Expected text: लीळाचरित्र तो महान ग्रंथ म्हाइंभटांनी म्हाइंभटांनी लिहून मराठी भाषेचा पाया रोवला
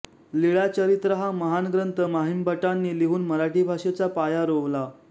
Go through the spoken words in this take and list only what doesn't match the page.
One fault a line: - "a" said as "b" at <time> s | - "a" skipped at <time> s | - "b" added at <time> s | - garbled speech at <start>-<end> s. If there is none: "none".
- "तो" said as "हा" at 1.1 s
- "म्हाइंभटांनी" skipped at 3.0 s